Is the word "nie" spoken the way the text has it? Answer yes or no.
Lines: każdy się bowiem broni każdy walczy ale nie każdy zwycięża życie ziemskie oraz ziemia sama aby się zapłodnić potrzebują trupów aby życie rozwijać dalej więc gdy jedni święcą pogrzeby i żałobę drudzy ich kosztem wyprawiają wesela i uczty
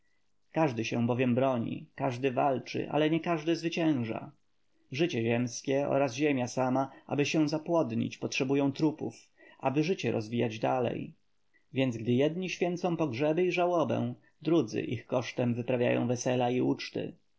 yes